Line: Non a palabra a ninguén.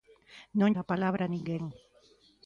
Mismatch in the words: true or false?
false